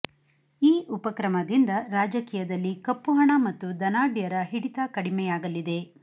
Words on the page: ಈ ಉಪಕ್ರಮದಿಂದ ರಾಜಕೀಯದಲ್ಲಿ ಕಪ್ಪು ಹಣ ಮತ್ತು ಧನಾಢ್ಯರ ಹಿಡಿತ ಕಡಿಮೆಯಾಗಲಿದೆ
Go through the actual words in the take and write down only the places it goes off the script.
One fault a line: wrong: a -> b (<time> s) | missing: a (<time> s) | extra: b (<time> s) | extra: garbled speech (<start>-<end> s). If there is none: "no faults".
no faults